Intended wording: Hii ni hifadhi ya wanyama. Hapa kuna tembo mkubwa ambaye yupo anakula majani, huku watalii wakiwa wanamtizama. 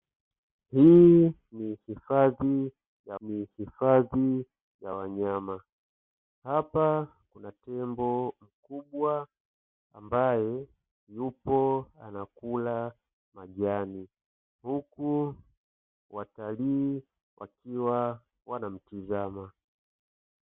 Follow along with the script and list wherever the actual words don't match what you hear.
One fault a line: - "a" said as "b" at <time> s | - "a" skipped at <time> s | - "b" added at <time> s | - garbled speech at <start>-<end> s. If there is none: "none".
- "ni hifadhi ya" added at 3.2 s